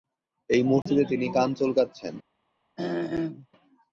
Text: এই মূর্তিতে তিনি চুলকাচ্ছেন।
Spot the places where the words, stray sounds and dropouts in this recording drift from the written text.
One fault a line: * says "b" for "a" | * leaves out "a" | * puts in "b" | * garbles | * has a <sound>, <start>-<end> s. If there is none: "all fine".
* has a dropout, 0.8-0.9 s
* puts in "কান"
* has a throat clearing, 2.8-3.5 s